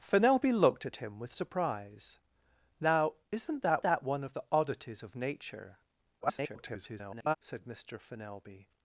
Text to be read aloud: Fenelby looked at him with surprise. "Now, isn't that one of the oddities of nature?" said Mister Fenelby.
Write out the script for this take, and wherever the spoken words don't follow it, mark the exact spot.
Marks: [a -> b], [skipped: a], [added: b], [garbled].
Fenelby looked at him with surprise. "Now, isn't that [added: that] one of the oddities of nature?" [garbled] said Mister Fenelby.